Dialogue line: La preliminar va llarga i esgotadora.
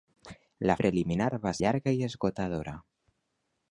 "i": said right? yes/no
yes